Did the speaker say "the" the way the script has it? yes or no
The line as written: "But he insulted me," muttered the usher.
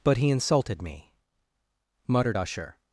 no